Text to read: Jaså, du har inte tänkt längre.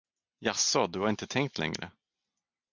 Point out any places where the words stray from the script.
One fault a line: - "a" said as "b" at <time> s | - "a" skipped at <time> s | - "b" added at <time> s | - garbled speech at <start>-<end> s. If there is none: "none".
none